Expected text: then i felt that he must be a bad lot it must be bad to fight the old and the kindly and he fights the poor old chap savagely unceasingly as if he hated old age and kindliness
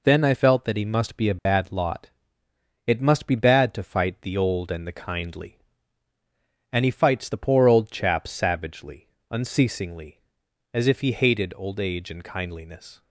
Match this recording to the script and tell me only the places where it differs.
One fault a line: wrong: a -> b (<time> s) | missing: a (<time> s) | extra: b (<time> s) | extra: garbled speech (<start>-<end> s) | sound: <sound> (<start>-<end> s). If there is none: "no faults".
sound: dropout (1.4-1.5 s)